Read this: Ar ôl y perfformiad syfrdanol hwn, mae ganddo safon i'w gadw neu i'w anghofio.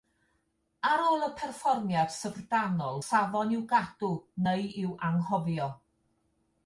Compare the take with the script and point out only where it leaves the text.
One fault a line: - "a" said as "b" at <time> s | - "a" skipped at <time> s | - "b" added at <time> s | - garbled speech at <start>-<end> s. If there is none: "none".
- "hwn mae ganddo" skipped at 3.0 s